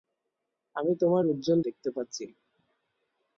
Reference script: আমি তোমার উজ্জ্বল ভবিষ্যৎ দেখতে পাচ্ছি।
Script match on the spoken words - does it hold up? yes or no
no